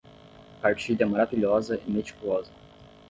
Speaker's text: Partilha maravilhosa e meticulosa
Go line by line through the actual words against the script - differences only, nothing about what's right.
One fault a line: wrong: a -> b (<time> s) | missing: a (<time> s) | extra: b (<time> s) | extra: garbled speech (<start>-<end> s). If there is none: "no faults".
no faults